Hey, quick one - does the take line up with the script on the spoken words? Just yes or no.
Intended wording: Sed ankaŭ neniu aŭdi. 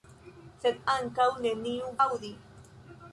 yes